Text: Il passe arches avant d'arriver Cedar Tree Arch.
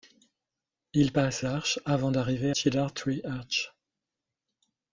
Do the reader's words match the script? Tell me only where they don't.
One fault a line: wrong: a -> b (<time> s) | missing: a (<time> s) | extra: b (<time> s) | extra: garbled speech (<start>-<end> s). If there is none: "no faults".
no faults